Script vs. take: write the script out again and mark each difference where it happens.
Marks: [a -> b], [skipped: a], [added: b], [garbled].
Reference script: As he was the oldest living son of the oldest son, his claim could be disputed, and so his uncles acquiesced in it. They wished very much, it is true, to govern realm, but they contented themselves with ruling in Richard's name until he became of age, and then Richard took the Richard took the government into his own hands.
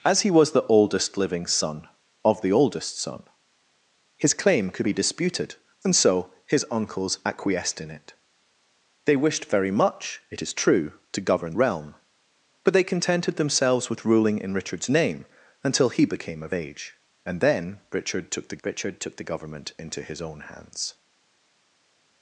As he was the oldest living son of the oldest son, his claim could be disputed, and so his uncles acquiesced in it. They wished very much, it is true, to govern realm, but they contented themselves with ruling in Richard's name until he became of age, and then Richard took the Richard took the government into his own hands.